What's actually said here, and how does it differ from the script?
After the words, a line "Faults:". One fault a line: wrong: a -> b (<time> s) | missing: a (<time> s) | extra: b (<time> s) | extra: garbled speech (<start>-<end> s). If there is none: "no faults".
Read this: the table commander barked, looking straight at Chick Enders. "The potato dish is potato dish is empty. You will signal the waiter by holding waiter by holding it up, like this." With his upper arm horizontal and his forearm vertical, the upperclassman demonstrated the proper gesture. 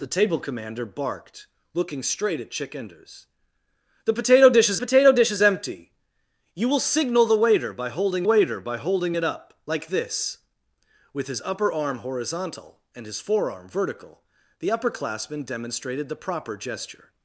the table commander barked, looking straight at Chick Enders. "The potato dish is potato dish is empty. You will signal the waiter by holding waiter by holding it up, like this." With his upper arm horizontal and his forearm vertical, the upperclassman demonstrated the proper gesture.
Faults:
no faults